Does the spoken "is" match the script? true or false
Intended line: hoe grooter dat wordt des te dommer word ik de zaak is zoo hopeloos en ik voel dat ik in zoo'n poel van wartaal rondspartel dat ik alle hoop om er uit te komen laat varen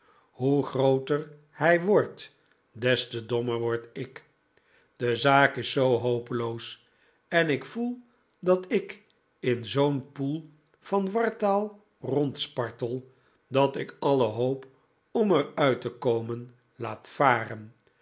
true